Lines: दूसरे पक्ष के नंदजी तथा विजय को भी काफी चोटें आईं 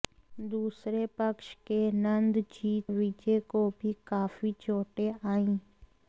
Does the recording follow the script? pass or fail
fail